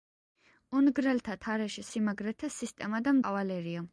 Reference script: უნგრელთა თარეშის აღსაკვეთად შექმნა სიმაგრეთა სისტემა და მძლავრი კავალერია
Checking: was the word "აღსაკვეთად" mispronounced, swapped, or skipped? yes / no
yes